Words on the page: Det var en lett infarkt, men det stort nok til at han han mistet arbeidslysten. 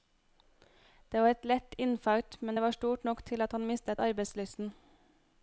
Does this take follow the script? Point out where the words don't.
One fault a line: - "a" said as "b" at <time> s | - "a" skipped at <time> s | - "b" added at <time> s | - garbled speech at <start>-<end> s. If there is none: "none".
- "en" said as "et" at 1.3 s
- "var" added at 2.6 s
- "han" skipped at 3.6 s